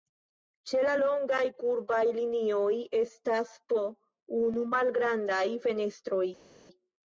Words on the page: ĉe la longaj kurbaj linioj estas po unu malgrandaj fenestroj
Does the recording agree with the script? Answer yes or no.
yes